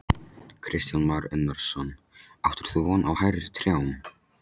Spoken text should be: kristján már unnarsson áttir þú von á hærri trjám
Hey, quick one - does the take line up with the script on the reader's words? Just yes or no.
yes